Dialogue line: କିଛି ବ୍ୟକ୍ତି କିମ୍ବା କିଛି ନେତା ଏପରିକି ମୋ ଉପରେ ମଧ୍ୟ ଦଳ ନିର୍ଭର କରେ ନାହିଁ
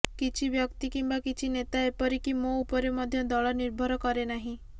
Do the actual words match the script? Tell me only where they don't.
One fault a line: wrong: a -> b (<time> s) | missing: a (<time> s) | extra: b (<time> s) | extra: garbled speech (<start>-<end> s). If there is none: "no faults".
no faults